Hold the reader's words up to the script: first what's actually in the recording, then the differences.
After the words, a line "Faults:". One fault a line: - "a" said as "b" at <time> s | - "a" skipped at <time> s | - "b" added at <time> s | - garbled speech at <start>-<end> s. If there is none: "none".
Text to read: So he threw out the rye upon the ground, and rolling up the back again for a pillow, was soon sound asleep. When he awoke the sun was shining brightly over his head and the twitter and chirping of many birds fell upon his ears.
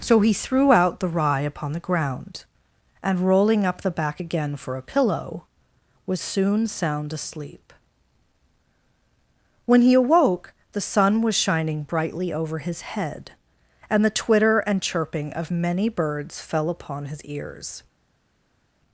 So he threw out the rye upon the ground, and rolling up the back again for a pillow, was soon sound asleep. When he awoke the sun was shining brightly over his head and the twitter and chirping of many birds fell upon his ears.
Faults:
none